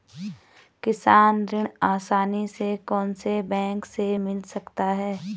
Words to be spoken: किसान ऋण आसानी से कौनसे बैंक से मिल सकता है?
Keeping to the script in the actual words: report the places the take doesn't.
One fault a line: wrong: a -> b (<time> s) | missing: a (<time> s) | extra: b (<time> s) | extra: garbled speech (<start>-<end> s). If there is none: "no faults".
no faults